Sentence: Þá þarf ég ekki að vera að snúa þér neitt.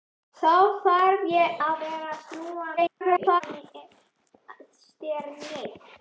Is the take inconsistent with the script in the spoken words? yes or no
yes